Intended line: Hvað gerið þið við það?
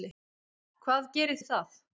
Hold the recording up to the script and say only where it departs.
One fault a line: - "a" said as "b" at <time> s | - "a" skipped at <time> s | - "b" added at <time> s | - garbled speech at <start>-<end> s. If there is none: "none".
- "þið" skipped at 1.4 s